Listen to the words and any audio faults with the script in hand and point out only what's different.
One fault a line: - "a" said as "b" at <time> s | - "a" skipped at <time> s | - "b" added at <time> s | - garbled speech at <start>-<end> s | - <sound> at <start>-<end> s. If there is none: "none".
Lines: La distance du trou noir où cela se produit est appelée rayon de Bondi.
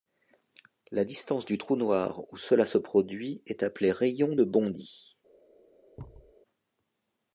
- thud at 6.0-6.3 s